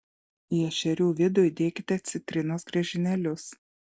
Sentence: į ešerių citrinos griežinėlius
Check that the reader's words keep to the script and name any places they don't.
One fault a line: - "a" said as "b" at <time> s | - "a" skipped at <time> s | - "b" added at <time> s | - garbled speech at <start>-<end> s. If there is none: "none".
- "vidų įdėkite" added at 1.2 s